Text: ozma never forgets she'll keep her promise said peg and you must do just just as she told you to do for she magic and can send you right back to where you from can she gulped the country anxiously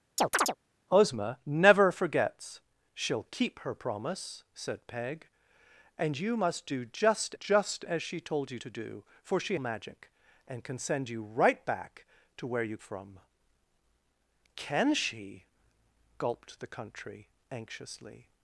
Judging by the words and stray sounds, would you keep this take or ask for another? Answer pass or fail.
fail